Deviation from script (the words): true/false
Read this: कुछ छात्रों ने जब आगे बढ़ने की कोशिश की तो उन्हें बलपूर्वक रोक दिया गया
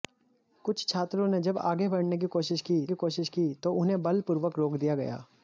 true